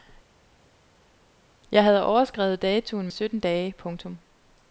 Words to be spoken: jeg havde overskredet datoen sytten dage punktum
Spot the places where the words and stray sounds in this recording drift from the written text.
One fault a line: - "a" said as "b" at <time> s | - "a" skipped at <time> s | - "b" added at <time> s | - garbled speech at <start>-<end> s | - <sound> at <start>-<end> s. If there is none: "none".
none